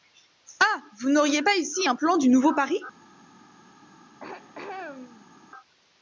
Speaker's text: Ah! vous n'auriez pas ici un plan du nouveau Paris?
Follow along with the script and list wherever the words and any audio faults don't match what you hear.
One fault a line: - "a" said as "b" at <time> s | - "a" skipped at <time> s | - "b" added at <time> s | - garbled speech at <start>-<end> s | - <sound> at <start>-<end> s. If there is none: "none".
- throat clearing at 4.2-5.3 s